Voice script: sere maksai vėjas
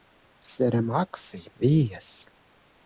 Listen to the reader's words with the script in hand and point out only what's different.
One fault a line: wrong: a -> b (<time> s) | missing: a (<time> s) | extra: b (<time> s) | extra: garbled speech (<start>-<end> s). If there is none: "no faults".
no faults